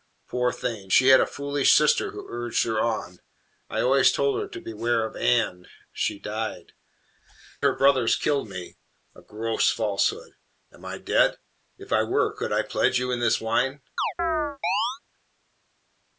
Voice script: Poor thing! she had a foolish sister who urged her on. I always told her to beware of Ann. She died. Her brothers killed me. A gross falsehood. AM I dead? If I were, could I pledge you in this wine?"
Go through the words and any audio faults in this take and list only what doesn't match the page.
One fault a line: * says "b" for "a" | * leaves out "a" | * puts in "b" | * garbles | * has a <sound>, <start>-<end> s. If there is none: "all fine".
* has a chirp, 14.0-15.0 s